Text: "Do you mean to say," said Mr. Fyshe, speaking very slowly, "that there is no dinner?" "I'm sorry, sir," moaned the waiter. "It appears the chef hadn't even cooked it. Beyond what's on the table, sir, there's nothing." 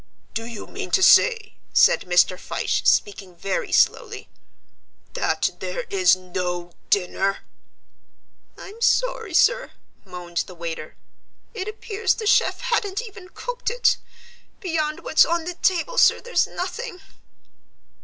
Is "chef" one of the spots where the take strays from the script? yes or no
no